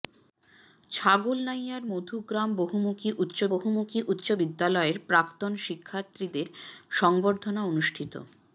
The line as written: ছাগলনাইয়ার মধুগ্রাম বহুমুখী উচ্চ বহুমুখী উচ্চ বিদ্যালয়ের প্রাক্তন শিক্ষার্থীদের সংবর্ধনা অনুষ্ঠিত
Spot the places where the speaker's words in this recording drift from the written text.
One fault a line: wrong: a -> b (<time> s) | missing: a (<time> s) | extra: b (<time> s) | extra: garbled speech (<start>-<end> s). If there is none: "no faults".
no faults